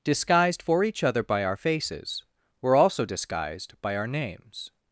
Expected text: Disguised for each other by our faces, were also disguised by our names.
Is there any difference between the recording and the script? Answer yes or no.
no